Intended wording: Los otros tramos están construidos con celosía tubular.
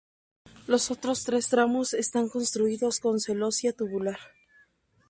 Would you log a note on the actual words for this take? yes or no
yes